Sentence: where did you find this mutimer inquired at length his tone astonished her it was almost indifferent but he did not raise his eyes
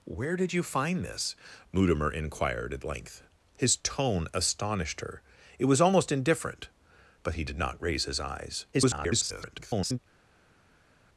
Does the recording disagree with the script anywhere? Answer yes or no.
yes